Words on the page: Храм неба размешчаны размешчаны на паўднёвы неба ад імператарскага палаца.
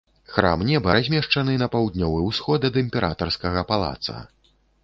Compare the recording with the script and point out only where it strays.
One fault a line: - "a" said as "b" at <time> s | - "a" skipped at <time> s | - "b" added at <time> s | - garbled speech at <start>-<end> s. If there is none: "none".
- "размешчаны" skipped at 1.6 s
- "неба" said as "ўсход" at 2.3 s